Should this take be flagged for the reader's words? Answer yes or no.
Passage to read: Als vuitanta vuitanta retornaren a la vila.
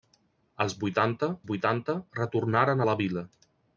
no